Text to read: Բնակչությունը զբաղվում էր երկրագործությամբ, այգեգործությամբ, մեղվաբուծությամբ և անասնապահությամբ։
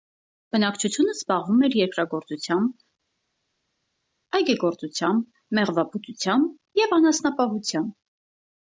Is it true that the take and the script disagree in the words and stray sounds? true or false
false